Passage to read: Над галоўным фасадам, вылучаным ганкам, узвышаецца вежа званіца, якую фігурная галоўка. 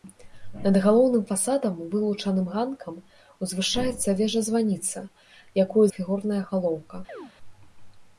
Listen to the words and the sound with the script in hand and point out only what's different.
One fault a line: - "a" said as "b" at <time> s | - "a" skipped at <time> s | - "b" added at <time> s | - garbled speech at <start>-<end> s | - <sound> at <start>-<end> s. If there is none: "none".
- chirp at 7.1-7.3 s